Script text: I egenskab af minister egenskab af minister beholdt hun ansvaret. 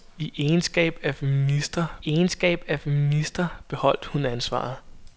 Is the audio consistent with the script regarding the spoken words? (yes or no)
yes